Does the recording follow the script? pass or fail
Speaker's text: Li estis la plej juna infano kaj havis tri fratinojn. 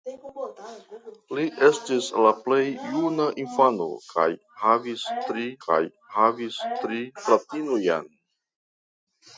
fail